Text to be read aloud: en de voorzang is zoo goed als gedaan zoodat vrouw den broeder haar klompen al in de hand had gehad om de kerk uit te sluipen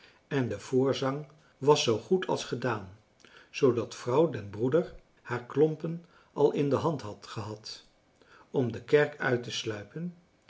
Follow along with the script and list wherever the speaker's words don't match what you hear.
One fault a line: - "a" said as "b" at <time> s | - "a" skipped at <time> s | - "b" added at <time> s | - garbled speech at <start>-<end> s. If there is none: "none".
- "is" said as "was" at 1.6 s